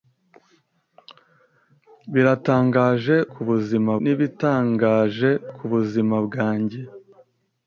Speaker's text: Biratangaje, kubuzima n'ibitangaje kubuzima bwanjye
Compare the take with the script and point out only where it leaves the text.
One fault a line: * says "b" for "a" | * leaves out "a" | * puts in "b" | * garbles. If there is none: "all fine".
all fine